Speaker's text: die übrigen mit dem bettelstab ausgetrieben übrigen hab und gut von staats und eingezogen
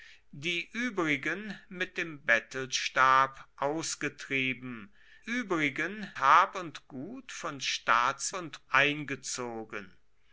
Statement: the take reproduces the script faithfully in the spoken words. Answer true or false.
true